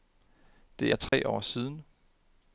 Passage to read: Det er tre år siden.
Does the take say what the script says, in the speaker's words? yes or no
yes